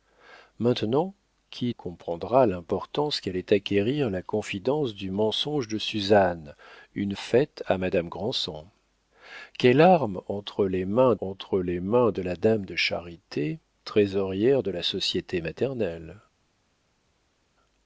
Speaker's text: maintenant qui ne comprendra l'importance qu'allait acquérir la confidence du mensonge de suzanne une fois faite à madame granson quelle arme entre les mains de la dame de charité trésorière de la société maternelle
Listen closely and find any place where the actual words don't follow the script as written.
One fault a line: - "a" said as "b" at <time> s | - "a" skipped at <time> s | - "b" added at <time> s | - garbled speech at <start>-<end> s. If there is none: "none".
- "ne" skipped at 1.8 s
- "fois" skipped at 7.1 s
- "entre les mains" added at 11.2 s